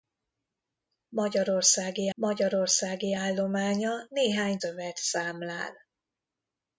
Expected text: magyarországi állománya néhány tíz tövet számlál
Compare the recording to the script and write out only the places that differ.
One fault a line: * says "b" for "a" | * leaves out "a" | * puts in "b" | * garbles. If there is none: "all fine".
* puts in "magyarországi"
* leaves out "tíz"